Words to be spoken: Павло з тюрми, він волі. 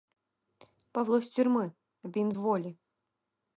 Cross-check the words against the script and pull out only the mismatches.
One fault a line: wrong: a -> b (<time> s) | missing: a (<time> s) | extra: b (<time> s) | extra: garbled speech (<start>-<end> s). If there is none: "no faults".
no faults